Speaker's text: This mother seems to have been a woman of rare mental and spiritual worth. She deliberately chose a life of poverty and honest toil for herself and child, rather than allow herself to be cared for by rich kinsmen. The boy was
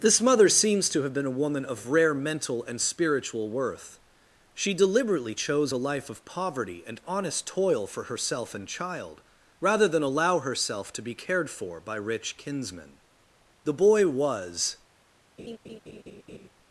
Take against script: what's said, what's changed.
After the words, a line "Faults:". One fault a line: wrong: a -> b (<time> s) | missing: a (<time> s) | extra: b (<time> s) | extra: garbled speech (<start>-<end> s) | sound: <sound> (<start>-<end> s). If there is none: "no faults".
This mother seems to have been a woman of rare mental and spiritual worth. She deliberately chose a life of poverty and honest toil for herself and child, rather than allow herself to be cared for by rich kinsmen. The boy was
Faults:
sound: laugh (15.4-16.5 s)